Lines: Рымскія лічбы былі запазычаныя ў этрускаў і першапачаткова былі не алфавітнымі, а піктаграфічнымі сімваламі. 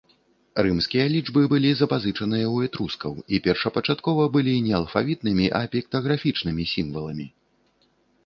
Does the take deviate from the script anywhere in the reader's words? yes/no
no